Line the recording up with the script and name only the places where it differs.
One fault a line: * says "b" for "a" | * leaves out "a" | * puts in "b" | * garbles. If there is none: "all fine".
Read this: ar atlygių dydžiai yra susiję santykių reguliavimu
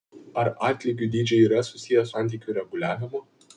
all fine